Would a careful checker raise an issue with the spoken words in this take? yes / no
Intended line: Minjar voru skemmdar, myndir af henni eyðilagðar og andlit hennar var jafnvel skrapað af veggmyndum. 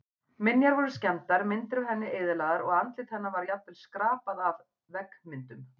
no